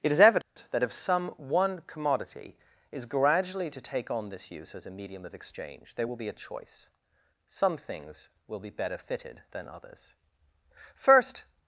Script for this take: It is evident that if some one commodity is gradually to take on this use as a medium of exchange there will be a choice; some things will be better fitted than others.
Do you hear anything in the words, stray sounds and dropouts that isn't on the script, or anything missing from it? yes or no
yes